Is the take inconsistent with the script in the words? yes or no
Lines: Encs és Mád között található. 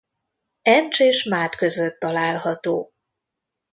no